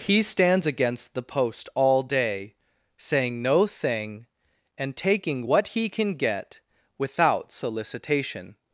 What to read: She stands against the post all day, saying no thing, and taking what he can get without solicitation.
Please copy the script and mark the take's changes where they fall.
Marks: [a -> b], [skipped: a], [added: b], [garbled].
[She -> He] stands against the post all day, saying no thing, and taking what he can get without solicitation.